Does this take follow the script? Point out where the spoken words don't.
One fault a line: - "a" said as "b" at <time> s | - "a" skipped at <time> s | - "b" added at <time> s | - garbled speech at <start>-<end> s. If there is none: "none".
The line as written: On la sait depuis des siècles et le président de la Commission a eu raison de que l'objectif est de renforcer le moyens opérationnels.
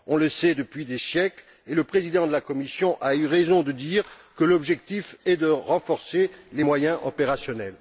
- "la" said as "le" at 0.2 s
- "dire" added at 3.7 s
- "le" said as "les" at 6.5 s